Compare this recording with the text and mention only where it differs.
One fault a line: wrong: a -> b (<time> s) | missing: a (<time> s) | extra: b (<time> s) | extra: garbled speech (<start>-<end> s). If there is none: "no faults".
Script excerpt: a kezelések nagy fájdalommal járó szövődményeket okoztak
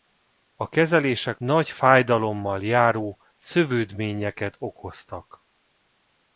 no faults